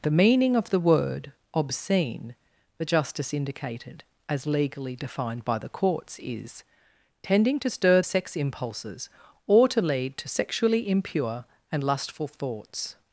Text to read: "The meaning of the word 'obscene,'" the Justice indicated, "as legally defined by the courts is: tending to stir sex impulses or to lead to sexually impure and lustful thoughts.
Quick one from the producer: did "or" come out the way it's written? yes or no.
yes